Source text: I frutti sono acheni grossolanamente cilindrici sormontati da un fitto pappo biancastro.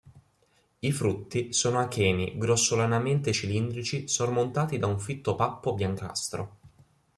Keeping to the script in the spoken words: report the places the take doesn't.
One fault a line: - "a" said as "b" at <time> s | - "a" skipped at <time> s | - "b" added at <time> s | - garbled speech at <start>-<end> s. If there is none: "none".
none